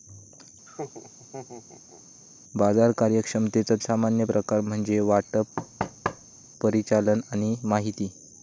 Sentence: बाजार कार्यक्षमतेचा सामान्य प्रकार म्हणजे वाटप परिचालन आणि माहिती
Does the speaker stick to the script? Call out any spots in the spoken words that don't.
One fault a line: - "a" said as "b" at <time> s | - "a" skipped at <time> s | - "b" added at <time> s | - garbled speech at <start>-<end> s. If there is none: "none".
none